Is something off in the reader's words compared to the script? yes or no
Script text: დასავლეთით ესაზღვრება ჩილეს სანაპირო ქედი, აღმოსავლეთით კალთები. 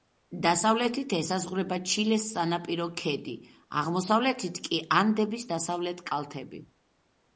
yes